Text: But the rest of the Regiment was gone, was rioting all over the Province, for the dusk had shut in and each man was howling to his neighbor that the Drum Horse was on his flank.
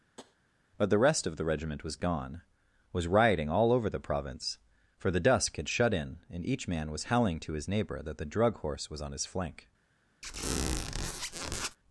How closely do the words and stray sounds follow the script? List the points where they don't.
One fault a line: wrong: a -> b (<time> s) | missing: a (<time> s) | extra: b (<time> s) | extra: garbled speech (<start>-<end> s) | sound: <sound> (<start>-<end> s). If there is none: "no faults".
sound: tap (0.2-0.4 s)
wrong: Drum -> Drug (8.3 s)
sound: squeak (10.2-11.8 s)